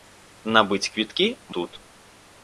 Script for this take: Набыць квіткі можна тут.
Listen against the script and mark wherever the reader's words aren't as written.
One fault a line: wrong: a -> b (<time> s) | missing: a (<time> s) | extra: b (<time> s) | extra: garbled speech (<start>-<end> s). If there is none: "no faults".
missing: можна (1.3 s)